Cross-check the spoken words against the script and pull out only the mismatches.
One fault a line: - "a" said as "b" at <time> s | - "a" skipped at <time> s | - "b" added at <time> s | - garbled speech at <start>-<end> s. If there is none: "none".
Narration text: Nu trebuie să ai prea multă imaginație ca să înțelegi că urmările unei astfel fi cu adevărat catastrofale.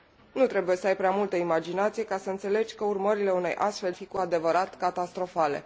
none